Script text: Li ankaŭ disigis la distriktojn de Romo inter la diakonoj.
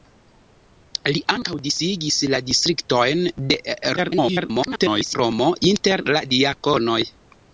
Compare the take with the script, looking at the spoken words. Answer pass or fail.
fail